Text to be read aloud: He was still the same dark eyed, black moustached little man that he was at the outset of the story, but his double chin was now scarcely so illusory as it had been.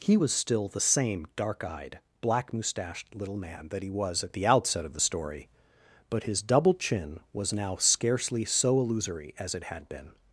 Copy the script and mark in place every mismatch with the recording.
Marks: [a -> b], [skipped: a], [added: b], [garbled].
He was still the same dark eyed, black moustached little man that he was at the outset of the story, but his double chin was now scarcely so illusory as it had been.